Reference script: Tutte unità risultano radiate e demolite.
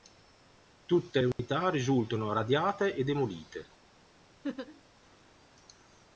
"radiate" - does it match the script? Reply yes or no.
yes